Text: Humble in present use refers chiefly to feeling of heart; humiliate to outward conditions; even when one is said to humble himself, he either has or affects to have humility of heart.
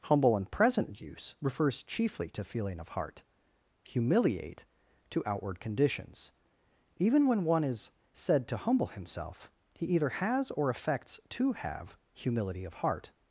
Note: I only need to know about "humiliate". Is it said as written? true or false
true